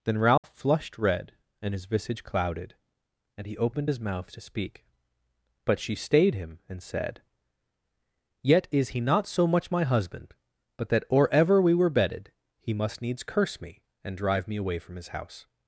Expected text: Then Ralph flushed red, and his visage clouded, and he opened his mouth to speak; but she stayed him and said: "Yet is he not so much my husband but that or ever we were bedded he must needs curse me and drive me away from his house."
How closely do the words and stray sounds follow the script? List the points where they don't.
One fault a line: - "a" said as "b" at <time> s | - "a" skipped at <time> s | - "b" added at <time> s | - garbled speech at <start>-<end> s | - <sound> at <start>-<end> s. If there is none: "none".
- dropout at 0.4-0.4 s